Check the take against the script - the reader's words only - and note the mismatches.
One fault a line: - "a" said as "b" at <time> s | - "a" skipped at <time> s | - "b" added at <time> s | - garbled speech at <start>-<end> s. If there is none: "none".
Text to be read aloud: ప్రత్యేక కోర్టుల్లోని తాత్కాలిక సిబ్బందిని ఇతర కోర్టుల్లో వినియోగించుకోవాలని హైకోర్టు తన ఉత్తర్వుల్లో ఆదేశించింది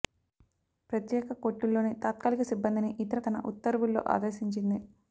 - "కోర్టుల్లో వినియోగించుకోవాలని హైకోర్టు" skipped at 3.2 s